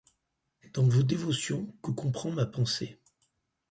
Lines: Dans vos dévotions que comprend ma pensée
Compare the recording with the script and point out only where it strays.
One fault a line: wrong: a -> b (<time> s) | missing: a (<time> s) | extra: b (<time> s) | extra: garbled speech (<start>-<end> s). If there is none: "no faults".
no faults